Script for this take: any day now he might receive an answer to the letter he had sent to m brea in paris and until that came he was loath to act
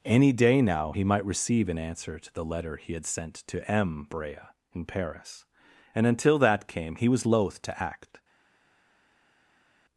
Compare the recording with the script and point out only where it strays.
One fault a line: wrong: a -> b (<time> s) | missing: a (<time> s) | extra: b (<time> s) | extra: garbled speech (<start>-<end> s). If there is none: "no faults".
no faults